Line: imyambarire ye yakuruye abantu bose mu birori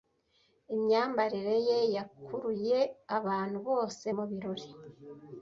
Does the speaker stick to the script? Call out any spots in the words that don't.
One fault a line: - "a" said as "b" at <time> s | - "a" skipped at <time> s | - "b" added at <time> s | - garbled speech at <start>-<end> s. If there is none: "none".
none